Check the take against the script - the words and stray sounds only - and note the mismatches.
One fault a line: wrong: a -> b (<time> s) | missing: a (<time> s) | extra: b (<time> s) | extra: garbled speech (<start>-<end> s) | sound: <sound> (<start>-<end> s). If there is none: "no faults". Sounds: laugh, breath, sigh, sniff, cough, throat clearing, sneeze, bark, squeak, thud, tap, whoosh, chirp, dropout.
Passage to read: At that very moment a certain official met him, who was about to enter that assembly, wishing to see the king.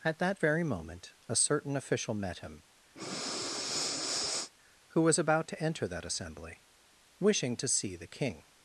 sound: breath (3.0-4.5 s)